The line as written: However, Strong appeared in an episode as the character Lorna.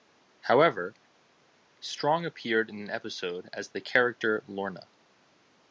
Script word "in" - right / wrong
right